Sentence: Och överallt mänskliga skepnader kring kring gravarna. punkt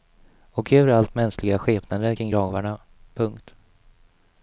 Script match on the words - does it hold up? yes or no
no